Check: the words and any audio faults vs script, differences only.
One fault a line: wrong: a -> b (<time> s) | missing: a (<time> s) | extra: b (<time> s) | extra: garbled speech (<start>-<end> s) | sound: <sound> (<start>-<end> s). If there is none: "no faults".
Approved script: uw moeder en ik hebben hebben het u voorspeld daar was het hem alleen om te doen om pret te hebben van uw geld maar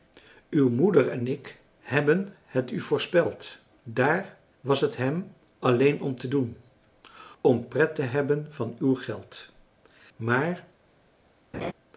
missing: hebben (2.3 s)
sound: laugh (11.5-11.7 s)